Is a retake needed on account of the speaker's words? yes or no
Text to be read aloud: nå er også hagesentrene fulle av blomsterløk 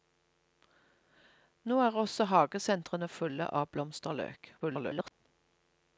yes